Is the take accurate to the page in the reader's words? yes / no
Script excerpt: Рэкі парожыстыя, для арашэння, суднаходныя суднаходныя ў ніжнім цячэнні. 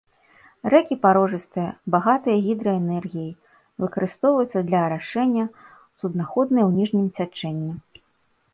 no